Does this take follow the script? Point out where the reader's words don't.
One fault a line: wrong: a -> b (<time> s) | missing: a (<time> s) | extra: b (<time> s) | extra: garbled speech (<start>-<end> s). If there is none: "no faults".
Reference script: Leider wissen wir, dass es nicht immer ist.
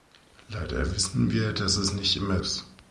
no faults